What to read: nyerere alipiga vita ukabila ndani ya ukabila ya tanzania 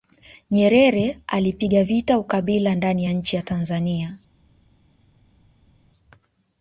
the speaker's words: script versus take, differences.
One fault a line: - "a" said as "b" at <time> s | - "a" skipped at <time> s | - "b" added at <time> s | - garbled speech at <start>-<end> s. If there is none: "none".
- "ukabila" said as "nchi" at 3.1 s